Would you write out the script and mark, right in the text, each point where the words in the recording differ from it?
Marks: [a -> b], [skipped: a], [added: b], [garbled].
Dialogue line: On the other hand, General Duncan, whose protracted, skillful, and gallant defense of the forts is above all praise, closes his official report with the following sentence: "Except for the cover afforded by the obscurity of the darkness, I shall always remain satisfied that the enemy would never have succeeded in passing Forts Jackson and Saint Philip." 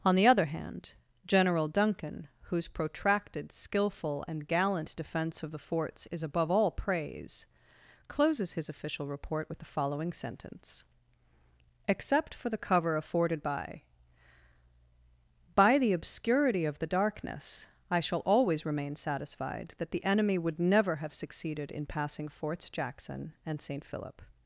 On the other hand, General Duncan, whose protracted, skillful, and gallant defense of the forts is above all praise, closes his official report with the following sentence: "Except for the cover afforded by [added: by] the obscurity of the darkness, I shall always remain satisfied that the enemy would never have succeeded in passing Forts Jackson and Saint Philip."